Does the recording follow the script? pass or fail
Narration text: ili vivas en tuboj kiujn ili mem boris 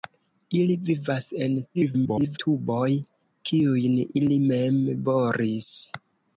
fail